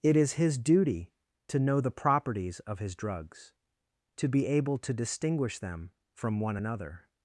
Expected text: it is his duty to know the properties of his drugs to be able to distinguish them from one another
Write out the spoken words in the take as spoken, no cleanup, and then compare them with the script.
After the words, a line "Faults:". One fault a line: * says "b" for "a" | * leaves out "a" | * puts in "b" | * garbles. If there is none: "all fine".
it is his duty to know the properties of his drugs to be able to distinguish them from one another
Faults:
all fine